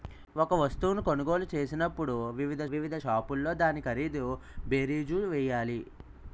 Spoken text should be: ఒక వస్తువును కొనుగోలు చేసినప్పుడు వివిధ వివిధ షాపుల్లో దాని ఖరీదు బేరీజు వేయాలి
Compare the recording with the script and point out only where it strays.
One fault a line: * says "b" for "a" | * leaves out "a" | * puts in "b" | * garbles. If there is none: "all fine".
all fine